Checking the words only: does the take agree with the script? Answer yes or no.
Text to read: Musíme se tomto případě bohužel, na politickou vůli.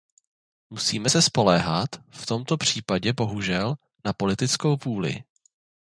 no